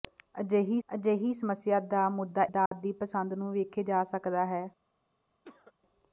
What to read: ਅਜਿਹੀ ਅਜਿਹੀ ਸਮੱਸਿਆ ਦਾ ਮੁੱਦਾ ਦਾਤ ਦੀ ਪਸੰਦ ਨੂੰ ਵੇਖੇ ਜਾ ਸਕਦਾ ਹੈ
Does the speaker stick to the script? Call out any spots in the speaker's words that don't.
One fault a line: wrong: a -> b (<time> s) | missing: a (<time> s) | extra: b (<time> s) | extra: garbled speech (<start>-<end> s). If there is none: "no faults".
no faults